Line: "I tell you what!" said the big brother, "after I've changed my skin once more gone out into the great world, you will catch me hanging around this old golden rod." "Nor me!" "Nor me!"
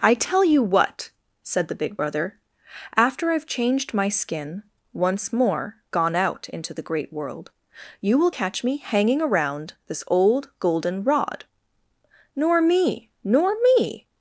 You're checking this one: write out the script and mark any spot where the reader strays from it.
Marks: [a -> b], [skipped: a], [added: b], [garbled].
"I tell you what!" said the big brother, "after I've changed my skin once more gone out into the great world, you will catch me hanging around this old golden rod." "Nor me!" "Nor me!"